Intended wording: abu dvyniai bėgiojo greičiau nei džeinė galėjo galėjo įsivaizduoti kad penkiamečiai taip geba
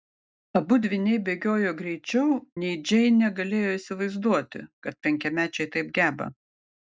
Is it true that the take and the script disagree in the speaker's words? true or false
true